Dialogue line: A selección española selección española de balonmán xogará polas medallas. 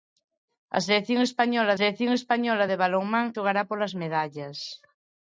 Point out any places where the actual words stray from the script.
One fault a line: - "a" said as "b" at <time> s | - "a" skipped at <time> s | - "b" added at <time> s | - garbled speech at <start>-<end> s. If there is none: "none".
none